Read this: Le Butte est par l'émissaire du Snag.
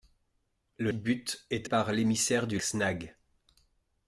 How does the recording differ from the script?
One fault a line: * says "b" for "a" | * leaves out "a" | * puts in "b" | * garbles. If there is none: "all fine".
all fine